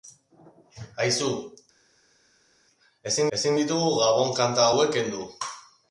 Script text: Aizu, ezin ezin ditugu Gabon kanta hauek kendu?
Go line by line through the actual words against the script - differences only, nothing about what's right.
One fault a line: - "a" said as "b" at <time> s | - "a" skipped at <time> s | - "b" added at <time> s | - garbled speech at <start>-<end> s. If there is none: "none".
none